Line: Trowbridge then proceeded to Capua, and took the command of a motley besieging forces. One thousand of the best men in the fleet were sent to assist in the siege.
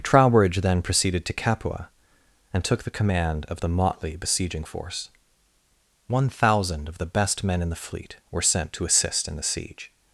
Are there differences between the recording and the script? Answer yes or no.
yes